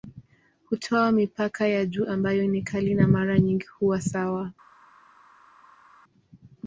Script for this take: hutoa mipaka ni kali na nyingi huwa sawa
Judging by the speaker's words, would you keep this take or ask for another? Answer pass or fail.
fail